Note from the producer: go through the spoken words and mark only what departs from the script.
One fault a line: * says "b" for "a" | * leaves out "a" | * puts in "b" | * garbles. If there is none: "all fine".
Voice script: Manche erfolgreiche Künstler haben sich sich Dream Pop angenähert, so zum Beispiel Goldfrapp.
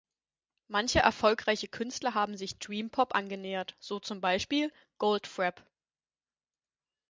* leaves out "sich"